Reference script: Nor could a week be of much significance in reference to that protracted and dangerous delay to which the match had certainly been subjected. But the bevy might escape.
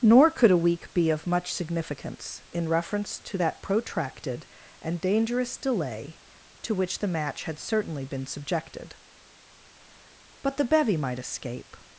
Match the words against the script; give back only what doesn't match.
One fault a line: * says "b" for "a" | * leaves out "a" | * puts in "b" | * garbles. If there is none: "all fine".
all fine